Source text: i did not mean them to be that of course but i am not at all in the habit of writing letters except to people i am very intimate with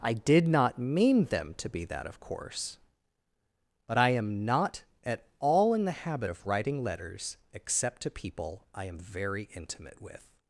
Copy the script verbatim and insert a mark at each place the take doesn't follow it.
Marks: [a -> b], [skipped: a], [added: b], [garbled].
i did not mean them to be that of course but i am not at all in the habit of writing letters except to people i am very intimate with